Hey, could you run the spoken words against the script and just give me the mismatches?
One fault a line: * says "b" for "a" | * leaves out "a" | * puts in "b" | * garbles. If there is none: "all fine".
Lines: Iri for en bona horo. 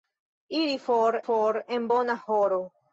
* puts in "for"